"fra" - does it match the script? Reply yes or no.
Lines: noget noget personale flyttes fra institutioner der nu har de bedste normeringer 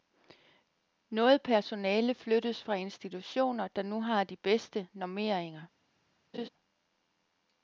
yes